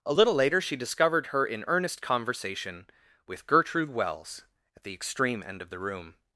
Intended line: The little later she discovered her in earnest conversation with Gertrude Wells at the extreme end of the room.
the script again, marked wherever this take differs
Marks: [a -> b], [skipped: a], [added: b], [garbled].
[The -> A] little later she discovered her in earnest conversation with Gertrude Wells at the extreme end of the room.